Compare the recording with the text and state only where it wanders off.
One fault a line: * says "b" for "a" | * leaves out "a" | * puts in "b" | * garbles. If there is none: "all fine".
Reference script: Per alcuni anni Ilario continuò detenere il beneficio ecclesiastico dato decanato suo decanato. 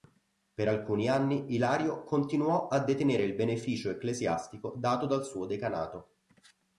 * puts in "a"
* says "dal" for "decanato"